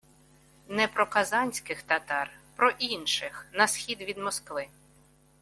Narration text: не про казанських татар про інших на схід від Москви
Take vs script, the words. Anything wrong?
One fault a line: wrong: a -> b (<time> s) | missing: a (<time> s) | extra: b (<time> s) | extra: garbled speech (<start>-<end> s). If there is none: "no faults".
no faults